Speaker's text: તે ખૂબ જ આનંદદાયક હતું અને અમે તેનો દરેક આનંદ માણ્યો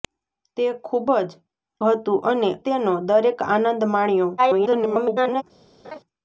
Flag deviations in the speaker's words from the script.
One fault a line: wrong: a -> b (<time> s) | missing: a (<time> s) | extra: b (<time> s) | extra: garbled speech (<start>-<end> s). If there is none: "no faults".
missing: આનંદદાયક (1.3 s)
missing: અમે (2.5 s)
extra: garbled speech (4.4-5.4 s)